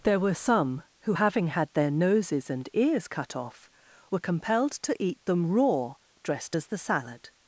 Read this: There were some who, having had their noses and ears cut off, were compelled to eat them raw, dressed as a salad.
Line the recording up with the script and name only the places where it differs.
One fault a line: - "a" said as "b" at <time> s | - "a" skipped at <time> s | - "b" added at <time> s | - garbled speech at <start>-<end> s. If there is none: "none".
- "a" said as "the" at 6.7 s